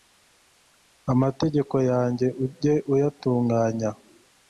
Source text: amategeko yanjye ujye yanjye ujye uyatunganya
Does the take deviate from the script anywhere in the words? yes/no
yes